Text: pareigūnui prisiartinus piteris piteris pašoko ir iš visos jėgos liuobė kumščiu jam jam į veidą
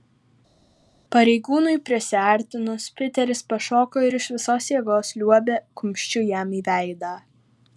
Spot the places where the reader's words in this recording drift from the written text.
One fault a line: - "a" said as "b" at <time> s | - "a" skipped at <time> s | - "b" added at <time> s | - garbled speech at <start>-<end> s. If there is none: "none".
- "piteris" skipped at 3.4 s
- "jam" skipped at 6.5 s